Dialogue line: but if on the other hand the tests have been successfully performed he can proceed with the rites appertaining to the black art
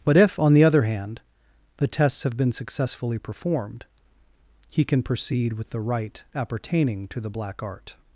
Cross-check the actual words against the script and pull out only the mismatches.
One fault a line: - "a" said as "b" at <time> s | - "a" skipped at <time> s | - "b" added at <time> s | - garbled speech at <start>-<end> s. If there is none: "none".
- "rites" said as "rite" at 5.8 s